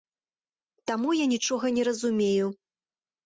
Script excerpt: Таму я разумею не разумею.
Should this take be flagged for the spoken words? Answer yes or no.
yes